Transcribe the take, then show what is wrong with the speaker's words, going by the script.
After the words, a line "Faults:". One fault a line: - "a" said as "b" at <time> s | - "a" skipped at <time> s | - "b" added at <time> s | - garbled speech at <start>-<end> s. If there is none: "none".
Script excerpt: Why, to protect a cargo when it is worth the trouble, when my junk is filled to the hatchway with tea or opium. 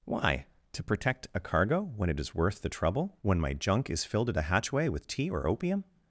Why, to protect a cargo when it is worth the trouble, when my junk is filled at a hatchway with tea or opium.
Faults:
- "to the" said as "at a" at 4.3 s